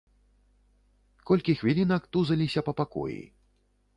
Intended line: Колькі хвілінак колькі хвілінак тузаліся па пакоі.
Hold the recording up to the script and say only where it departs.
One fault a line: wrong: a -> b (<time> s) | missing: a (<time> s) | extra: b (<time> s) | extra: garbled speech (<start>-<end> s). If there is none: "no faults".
missing: колькі хвілінак (2.1 s)